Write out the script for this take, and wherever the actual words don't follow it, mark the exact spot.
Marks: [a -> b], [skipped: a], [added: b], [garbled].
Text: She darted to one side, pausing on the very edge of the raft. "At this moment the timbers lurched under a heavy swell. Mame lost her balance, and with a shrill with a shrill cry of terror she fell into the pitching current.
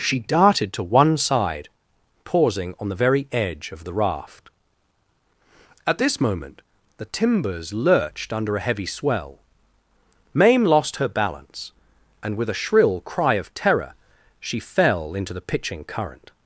She darted to one side, pausing on the very edge of the raft. "At this moment the timbers lurched under a heavy swell. Mame lost her balance, and with a shrill [skipped: with a shrill] cry of terror she fell into the pitching current.